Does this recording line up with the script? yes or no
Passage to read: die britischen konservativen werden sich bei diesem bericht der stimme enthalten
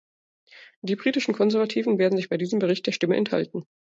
yes